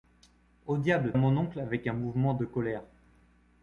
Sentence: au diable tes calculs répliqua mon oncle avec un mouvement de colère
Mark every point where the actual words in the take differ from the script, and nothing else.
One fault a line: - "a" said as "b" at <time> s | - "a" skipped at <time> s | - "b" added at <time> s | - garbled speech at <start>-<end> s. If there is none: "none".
- "tes calculs répliqua" skipped at 1.1 s